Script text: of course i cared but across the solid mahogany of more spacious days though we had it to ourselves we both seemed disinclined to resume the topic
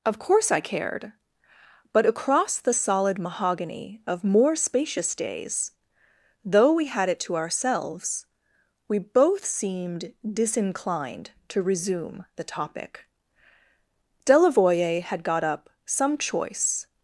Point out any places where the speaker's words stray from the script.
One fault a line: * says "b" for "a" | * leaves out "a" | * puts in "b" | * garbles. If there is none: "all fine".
* puts in "delavoye had got up some choice"